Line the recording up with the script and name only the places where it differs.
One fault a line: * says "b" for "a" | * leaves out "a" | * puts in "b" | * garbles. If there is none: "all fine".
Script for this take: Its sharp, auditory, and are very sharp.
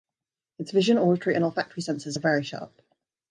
* says "vision" for "sharp"
* puts in "olfactory senses"